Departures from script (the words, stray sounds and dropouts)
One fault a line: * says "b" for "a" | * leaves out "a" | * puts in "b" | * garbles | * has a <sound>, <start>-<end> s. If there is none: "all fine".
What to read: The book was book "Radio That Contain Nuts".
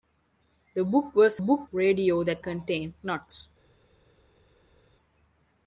all fine